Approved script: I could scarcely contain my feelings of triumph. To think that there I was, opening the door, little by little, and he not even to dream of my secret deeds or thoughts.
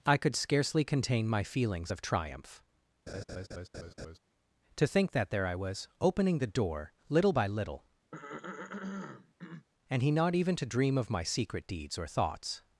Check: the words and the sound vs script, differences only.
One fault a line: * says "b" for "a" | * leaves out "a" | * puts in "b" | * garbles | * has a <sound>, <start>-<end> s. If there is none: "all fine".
* has a laugh, 3.1-4.2 s
* has a throat clearing, 8.1-9.7 s